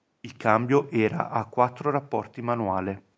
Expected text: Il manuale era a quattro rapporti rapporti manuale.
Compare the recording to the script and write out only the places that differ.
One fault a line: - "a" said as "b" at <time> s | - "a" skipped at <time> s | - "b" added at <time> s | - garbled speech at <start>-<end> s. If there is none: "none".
- "manuale" said as "cambio" at 0.3 s
- "rapporti" skipped at 2.4 s